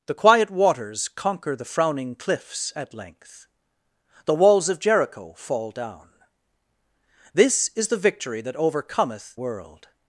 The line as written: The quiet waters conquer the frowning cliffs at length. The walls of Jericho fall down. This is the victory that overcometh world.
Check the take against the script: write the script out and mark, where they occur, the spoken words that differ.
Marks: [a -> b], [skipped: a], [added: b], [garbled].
The quiet waters conquer the frowning cliffs at length. The walls of Jericho fall down. This is the victory that overcometh world.